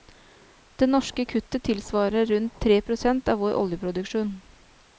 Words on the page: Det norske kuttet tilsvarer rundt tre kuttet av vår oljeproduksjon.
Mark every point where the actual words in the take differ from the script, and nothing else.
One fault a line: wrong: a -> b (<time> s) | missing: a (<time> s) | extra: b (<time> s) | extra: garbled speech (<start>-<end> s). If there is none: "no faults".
wrong: kuttet -> prosent (2.8 s)